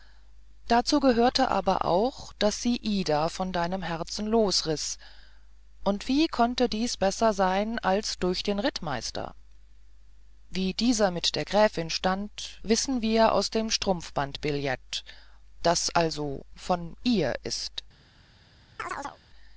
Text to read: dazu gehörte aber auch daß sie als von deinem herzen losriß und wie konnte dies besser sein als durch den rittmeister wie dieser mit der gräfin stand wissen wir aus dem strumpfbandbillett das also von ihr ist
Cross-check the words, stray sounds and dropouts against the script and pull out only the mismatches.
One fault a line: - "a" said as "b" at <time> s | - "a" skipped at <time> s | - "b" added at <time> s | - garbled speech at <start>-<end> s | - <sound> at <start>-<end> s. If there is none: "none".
- "als" said as "ida" at 2.8 s
- chirp at 18.8-19.2 s